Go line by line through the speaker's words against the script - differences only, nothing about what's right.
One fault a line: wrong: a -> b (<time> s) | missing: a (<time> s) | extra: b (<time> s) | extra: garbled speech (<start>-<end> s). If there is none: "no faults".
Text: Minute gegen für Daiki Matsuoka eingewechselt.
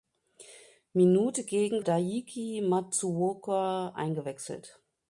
missing: für (1.8 s)